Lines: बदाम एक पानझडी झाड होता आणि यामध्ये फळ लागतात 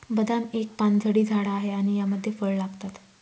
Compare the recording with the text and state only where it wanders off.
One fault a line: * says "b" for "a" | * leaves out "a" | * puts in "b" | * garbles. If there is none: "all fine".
* says "आहे" for "होता"